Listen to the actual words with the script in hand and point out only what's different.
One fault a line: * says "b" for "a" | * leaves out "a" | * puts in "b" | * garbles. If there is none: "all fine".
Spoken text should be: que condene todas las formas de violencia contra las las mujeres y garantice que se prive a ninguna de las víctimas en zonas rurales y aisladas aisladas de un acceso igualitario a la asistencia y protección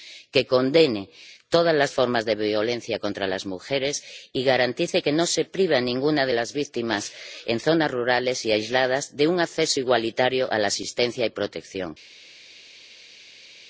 * leaves out "las"
* puts in "no"
* leaves out "aisladas"